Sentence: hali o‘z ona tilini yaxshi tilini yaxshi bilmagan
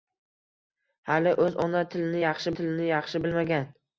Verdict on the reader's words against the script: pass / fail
pass